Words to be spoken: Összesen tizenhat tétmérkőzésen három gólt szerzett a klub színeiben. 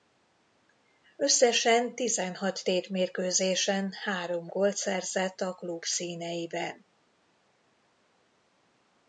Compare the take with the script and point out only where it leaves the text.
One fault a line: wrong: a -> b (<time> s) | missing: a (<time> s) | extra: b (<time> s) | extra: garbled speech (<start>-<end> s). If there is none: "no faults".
no faults